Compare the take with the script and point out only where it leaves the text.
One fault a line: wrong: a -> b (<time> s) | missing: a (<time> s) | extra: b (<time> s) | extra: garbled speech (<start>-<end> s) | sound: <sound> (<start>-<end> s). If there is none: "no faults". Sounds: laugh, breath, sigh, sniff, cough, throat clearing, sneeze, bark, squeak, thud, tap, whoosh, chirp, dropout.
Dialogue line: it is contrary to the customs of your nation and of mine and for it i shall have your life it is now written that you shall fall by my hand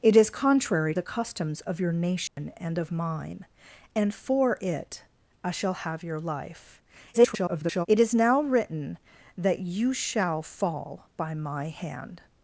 missing: to (0.9 s)
sound: dropout (2.3-2.4 s)
extra: garbled speech (7.1-7.9 s)